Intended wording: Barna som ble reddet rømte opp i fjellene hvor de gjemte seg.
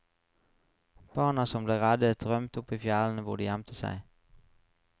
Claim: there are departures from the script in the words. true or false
false